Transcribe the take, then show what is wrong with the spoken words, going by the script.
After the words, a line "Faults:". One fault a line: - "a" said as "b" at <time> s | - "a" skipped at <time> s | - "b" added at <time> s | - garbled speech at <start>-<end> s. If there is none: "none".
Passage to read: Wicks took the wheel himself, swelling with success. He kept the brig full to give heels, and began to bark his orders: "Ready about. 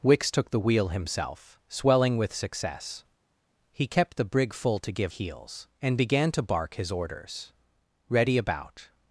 Wicks took the wheel himself, swelling with success. He kept the brig full to give heels, and began to bark his orders: "Ready about.
Faults:
none